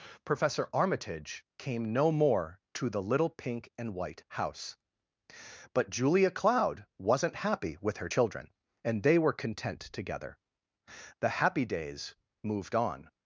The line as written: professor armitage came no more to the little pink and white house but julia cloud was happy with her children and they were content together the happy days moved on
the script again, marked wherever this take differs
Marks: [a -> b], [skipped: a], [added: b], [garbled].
professor armitage came no more to the little pink and white house but julia cloud [was -> wasn't] happy with her children and they were content together the happy days moved on